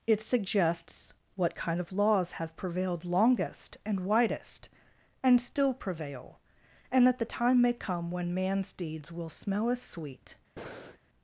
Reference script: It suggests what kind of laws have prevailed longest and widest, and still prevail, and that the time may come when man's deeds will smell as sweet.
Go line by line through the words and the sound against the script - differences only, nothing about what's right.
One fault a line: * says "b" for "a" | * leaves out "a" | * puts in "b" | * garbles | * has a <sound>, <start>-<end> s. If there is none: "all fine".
* has a breath, 10.6-11.0 s